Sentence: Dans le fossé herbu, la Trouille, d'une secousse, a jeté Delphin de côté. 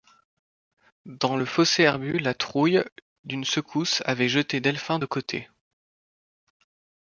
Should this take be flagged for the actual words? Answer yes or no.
yes